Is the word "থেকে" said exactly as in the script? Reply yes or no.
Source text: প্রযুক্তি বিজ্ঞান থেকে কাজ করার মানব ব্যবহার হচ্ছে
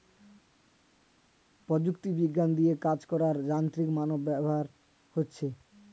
no